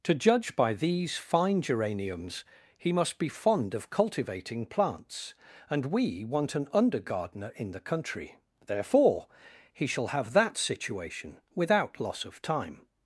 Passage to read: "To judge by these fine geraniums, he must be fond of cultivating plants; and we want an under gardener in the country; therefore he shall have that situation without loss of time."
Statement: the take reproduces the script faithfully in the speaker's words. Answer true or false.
true